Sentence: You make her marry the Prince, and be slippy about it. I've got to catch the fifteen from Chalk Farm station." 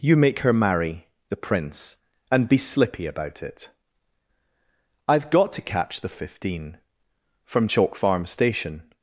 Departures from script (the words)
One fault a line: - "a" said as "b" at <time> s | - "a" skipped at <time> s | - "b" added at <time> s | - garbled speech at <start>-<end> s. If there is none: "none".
none